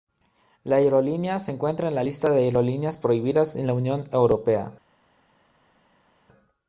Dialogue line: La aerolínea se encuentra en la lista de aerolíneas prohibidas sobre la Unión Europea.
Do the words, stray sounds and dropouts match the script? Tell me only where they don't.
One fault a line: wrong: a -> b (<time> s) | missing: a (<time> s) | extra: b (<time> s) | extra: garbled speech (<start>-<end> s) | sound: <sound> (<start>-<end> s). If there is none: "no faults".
wrong: sobre -> en (3.6 s)